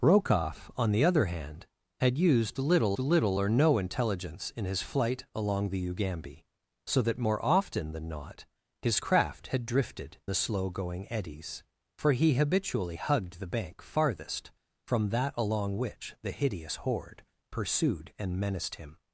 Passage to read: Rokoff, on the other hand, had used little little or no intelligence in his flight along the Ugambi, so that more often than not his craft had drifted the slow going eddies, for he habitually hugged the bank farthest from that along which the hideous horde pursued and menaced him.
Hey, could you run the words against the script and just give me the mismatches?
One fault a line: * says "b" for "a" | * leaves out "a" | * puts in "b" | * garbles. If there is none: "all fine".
all fine